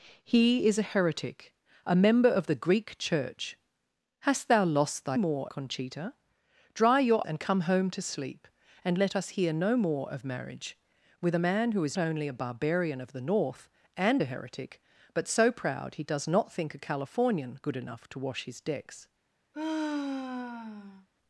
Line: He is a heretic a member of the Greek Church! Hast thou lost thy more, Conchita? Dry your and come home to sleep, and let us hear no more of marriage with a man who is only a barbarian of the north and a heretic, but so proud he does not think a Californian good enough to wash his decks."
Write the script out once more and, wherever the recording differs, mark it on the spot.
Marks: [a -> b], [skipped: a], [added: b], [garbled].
He is a heretic a member of the Greek Church! Hast thou lost thy more, Conchita? Dry your and come home to sleep, and let us hear no more of marriage with a man who is only a barbarian of the north and a heretic, but so proud he does not think a Californian good enough to wash his decks."